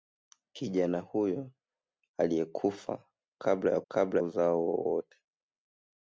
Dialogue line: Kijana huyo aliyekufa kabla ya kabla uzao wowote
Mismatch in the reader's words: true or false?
false